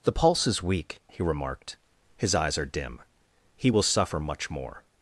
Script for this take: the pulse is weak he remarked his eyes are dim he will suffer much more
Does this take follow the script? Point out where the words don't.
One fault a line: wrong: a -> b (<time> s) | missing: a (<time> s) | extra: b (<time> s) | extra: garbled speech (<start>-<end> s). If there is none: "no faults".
no faults